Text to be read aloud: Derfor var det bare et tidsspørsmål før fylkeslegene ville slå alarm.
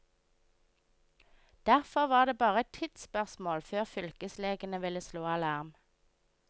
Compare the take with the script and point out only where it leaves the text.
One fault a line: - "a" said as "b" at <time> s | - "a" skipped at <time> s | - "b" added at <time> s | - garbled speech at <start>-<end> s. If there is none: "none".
none